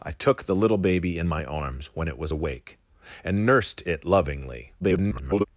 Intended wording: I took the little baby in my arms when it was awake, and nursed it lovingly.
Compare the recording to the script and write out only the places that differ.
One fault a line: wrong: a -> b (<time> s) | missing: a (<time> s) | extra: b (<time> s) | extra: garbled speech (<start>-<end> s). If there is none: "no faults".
extra: garbled speech (4.8-5.5 s)